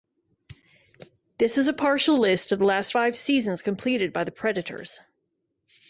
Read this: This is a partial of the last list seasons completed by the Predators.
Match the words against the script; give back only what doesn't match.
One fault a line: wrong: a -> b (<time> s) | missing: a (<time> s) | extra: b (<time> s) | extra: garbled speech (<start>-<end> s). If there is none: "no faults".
extra: list (2.2 s)
wrong: list -> five (2.9 s)